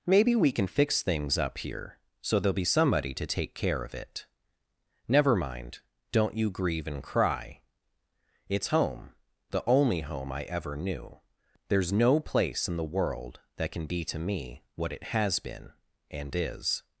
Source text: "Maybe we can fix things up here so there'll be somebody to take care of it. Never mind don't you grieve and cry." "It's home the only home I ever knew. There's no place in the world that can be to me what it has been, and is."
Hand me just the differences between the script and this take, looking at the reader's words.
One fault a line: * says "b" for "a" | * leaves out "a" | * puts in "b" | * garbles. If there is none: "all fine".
all fine